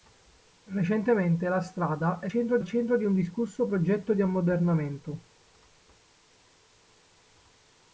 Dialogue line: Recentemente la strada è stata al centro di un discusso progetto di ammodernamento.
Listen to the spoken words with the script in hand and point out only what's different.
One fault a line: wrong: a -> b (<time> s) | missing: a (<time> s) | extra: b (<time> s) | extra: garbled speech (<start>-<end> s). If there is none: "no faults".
wrong: stata -> centro (2.3 s)